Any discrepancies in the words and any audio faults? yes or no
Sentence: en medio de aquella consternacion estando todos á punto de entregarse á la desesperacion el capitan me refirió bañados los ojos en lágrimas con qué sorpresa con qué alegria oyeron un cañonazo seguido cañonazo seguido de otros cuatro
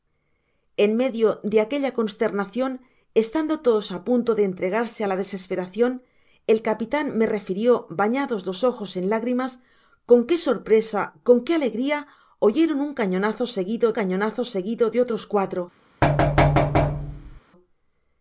yes